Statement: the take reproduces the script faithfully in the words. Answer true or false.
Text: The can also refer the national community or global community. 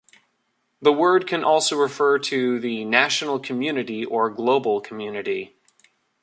false